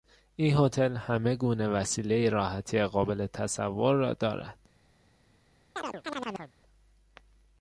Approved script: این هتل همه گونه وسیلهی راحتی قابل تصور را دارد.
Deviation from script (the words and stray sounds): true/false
true